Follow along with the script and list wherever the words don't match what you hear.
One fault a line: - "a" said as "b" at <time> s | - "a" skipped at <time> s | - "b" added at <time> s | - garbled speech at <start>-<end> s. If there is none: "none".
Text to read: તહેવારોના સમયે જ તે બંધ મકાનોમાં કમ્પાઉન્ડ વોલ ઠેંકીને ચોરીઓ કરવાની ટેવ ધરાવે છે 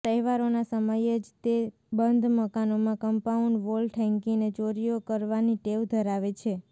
none